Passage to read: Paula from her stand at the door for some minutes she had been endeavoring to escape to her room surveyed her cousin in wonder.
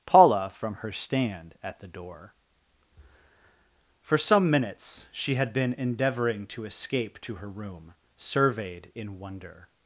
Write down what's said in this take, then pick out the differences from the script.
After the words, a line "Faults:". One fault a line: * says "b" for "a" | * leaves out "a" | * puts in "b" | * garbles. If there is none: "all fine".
Paula from her stand at the door for some minutes she had been endeavoring to escape to her room surveyed in wonder.
Faults:
* leaves out "her cousin"